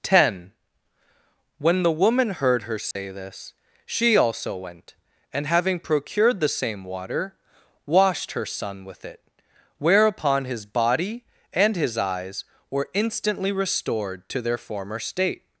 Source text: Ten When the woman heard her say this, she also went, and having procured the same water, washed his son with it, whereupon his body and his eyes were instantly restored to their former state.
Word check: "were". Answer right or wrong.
right